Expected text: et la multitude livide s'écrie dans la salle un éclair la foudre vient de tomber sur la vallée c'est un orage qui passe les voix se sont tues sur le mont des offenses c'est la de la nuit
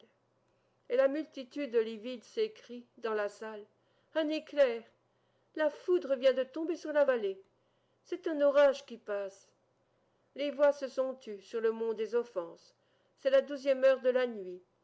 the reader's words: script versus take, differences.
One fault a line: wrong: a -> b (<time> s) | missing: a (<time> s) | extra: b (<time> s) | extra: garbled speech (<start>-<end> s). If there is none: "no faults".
extra: douzième heure (13.4 s)